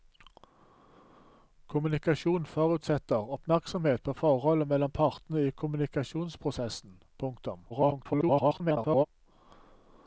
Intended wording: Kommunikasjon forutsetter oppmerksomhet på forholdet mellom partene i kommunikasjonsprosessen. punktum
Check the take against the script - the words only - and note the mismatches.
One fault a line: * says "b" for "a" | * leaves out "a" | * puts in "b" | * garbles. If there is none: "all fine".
* garbles